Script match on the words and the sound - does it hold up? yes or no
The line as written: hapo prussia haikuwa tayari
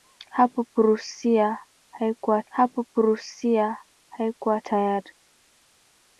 no